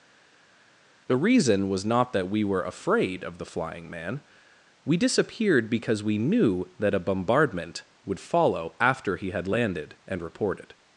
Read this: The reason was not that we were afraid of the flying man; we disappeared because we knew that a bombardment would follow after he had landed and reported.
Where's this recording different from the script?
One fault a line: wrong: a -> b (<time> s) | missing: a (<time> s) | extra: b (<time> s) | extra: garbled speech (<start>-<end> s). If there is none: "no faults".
no faults